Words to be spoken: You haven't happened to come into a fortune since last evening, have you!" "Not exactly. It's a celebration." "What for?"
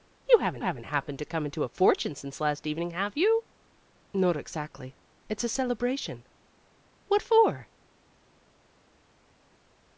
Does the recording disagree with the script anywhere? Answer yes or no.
yes